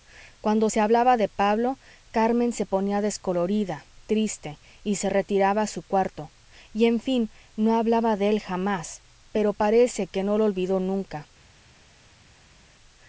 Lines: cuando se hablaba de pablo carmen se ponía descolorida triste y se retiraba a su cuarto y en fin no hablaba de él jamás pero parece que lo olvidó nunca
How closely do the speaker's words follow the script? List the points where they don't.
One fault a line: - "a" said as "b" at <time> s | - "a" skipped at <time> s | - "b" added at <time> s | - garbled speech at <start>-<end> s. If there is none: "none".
- "no" added at 10.2 s